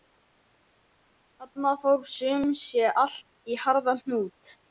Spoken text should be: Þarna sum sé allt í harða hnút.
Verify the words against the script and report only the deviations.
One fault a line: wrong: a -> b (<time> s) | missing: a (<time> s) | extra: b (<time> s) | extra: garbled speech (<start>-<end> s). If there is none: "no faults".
extra: fór (1.8 s)